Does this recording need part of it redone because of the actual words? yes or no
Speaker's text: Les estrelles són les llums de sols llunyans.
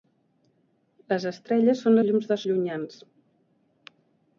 yes